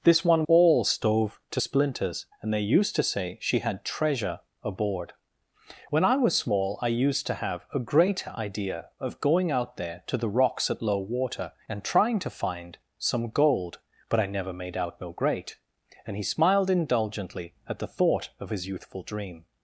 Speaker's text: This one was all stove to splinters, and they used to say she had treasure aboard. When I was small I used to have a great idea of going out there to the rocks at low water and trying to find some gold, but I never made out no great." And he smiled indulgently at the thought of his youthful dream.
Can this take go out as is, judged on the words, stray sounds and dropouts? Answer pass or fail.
fail